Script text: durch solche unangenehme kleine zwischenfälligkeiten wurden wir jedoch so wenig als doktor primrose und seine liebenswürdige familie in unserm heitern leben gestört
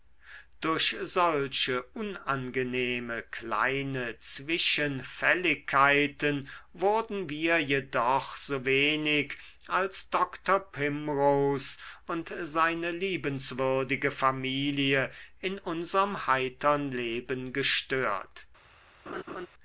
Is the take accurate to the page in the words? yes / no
yes